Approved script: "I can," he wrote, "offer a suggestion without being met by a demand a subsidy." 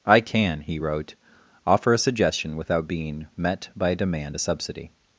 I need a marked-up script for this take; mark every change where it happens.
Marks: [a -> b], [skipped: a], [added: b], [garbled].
"I can," he wrote, "offer a suggestion without being met by a demand a subsidy."